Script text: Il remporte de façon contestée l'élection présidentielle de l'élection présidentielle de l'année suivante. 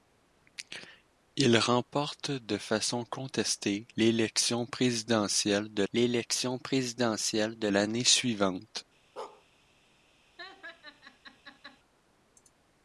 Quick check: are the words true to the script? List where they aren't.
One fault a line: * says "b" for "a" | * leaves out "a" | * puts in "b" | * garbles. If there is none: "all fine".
all fine